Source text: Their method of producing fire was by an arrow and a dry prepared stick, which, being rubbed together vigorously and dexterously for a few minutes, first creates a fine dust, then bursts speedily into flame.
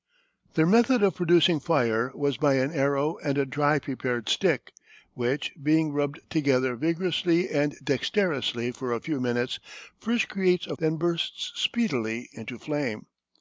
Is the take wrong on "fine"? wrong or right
wrong